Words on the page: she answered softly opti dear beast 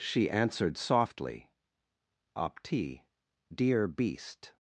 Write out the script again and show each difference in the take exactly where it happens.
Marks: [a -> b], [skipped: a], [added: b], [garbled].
she answered softly opti dear beast